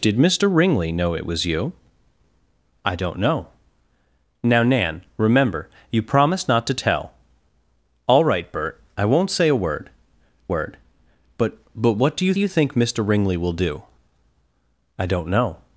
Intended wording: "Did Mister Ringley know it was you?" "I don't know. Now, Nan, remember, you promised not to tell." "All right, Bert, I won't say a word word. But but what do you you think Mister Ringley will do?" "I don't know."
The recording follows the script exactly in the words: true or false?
true